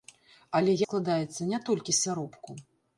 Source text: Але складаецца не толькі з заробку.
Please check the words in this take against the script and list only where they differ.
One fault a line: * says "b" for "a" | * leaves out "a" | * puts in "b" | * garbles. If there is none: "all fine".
all fine